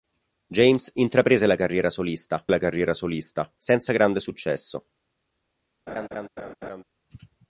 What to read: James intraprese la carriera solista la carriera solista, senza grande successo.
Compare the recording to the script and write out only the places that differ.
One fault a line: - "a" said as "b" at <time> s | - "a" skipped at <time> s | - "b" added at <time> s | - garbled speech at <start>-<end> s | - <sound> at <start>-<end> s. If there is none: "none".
- laugh at 5.9-6.8 s